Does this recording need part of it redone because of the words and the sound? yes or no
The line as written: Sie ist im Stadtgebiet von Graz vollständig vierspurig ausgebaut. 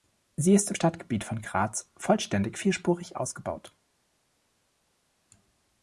no